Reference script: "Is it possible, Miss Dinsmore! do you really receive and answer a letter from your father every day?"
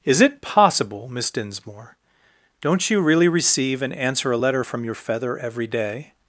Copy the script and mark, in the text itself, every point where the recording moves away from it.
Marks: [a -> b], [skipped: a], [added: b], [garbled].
"Is it possible, Miss Dinsmore! [do -> don't] you really receive and answer a letter from your [father -> feather] every day?"